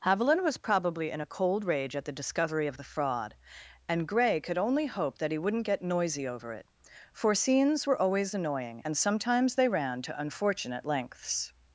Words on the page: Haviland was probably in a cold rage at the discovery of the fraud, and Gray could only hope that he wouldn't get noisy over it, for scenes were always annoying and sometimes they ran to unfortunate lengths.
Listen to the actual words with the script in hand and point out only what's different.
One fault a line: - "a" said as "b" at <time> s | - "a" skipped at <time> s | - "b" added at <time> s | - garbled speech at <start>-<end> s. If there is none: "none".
none